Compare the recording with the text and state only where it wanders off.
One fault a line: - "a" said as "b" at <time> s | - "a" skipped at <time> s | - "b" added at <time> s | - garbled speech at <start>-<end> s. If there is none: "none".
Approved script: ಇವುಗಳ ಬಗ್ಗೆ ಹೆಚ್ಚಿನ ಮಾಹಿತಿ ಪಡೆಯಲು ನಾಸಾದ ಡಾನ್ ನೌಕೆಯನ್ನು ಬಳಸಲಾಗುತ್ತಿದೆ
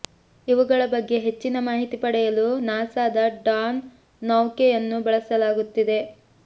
none